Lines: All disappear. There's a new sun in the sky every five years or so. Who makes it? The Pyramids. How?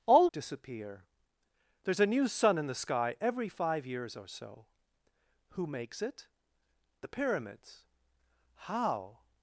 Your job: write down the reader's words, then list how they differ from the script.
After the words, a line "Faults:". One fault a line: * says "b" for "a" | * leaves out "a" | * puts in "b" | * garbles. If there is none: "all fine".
All disappear. There's a new sun in the sky every five years or so. Who makes it? The Pyramids. How?
Faults:
all fine